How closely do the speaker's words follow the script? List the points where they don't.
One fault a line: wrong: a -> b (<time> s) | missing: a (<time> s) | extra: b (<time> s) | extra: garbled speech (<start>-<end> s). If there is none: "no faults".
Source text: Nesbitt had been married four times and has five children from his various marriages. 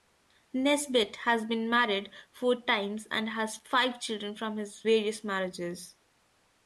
wrong: had -> has (1.2 s)